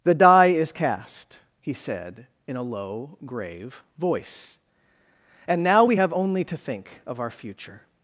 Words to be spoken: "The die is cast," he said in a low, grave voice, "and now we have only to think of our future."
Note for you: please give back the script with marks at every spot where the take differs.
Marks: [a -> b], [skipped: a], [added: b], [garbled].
"The die is cast," he said in a low, grave voice, "and now we have only to think of our future."